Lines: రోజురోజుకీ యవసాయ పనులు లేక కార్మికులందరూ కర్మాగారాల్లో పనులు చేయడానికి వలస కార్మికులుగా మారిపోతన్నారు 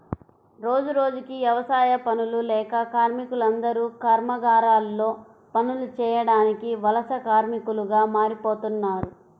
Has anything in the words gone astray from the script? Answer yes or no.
no